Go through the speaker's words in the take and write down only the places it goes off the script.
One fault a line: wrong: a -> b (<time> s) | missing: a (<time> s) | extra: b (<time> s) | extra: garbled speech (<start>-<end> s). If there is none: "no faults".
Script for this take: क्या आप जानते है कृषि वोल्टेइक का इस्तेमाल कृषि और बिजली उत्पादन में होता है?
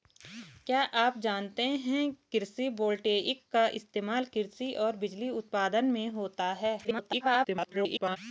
extra: garbled speech (6.8-8.2 s)